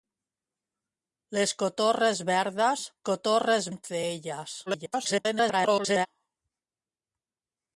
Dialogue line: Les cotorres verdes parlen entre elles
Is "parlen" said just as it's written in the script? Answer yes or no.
no